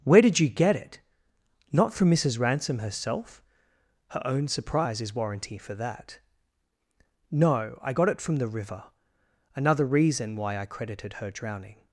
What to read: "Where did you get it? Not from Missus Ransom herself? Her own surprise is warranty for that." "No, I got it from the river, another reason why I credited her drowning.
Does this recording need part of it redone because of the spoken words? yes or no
no